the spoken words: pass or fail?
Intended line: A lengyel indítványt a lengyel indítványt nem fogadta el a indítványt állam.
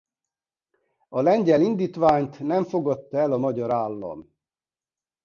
fail